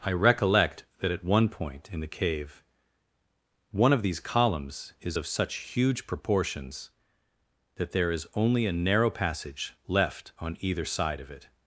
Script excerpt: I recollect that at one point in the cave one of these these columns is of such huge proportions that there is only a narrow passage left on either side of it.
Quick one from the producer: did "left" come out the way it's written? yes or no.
yes